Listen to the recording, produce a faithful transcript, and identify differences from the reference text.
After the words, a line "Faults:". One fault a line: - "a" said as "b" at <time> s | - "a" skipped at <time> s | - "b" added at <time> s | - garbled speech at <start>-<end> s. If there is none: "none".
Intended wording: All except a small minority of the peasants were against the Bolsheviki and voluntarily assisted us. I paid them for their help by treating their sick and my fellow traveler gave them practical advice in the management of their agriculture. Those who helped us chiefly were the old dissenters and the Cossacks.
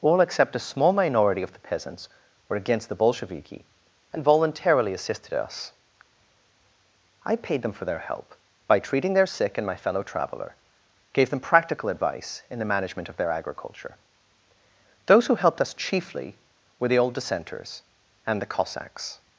All except a small minority of the peasants were against the Bolsheviki and voluntarily assisted us. I paid them for their help by treating their sick and my fellow traveler gave them practical advice in the management of their agriculture. Those who helped us chiefly were the old dissenters and the Cossacks.
Faults:
none